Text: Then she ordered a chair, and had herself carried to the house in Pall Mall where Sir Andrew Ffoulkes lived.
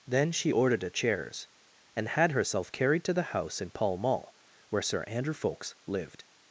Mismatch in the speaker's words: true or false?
true